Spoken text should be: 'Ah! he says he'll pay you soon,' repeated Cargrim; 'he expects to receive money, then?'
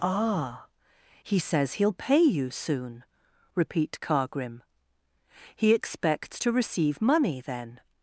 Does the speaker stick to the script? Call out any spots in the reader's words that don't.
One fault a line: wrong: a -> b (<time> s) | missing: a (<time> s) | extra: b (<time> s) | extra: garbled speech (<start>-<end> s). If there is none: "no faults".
wrong: repeated -> repeat (3.5 s)